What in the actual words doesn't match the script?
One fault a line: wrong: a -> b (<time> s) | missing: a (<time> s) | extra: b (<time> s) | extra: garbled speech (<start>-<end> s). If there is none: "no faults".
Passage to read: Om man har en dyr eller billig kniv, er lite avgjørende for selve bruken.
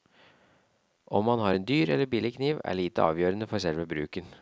no faults